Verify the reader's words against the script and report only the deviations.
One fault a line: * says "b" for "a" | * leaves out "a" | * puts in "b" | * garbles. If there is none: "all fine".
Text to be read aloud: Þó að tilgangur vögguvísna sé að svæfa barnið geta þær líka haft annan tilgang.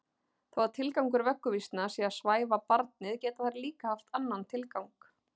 all fine